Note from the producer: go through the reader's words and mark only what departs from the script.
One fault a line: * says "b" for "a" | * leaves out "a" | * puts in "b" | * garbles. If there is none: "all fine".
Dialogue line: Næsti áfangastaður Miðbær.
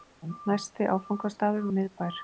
all fine